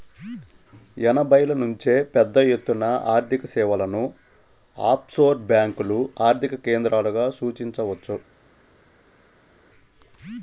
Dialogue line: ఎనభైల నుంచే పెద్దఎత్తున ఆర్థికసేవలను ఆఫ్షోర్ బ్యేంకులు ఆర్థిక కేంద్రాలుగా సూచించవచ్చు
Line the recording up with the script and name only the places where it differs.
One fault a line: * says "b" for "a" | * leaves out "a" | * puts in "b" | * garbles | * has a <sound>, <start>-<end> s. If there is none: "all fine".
all fine